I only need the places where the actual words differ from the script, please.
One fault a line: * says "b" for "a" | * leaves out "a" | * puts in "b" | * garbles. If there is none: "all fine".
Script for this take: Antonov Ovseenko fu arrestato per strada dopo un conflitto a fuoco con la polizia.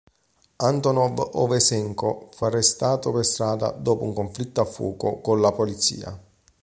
all fine